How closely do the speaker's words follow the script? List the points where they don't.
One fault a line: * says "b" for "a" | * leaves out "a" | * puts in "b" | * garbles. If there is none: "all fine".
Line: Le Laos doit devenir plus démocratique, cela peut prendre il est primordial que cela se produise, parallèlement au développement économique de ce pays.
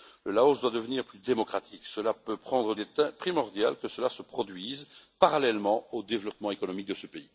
all fine